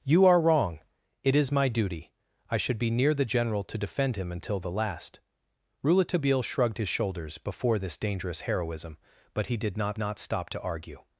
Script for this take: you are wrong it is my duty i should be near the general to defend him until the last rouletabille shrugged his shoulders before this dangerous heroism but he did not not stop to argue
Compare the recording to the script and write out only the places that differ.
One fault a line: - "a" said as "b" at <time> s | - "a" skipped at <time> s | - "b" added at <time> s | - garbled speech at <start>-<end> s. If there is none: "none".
none